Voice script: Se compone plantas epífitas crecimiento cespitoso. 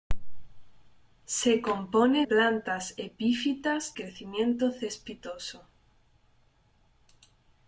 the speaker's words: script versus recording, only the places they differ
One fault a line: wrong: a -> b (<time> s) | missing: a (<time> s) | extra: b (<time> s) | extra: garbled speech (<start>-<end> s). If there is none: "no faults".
no faults